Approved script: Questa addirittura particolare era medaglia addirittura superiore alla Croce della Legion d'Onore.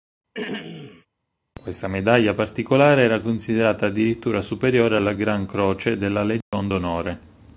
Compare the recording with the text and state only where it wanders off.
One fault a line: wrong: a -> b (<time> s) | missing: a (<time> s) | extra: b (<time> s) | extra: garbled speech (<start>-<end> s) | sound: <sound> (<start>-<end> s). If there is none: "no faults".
sound: throat clearing (0.3-1.1 s)
wrong: addirittura -> medaglia (1.9 s)
wrong: medaglia -> considerata (3.2 s)
extra: Gran (5.1 s)
sound: dropout (6.4-6.5 s)